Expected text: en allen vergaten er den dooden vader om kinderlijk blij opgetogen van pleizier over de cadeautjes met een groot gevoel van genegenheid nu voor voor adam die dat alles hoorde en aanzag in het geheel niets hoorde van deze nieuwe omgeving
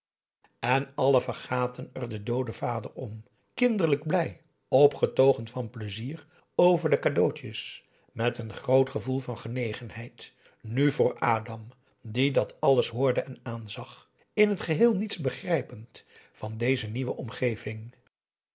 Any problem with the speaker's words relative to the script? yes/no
yes